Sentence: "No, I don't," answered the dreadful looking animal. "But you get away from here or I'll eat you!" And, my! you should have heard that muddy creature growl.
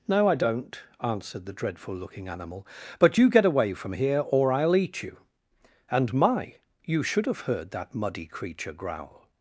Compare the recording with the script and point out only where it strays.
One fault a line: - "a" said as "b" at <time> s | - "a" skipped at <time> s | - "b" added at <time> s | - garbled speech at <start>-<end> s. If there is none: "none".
none